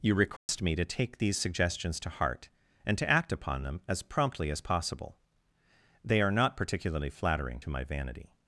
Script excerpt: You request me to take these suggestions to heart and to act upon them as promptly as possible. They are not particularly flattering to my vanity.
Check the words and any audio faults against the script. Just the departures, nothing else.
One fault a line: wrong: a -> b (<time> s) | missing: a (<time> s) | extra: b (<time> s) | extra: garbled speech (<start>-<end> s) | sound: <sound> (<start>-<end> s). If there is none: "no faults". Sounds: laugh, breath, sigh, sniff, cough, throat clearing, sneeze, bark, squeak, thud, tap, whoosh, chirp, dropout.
sound: dropout (0.4-0.5 s)